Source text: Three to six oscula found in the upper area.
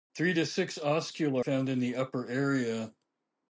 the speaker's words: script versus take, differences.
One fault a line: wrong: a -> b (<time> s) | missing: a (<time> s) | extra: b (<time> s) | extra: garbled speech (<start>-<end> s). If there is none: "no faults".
no faults